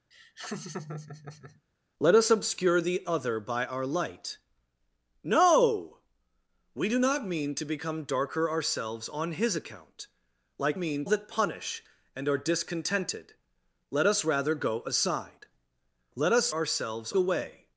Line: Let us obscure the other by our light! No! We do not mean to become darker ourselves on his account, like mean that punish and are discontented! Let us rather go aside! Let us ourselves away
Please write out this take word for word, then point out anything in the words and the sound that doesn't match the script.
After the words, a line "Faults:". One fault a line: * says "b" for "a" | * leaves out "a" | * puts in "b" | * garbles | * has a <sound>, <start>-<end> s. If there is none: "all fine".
Let us obscure the other by our light! No! We do not mean to become darker ourselves on his account, like mean that punish and are discontented! Let us rather go aside! Let us ourselves away
Faults:
* has a laugh, 0.1-1.6 s